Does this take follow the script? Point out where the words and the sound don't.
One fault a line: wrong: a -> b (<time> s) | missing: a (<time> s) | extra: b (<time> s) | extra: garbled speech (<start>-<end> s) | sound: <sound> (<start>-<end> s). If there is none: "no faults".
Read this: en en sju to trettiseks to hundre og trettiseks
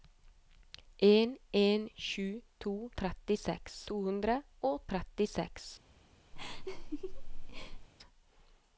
sound: laugh (6.3-7.9 s)